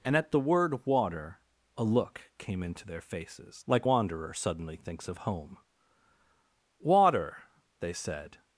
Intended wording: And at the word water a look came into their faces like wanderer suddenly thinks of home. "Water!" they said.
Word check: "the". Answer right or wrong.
right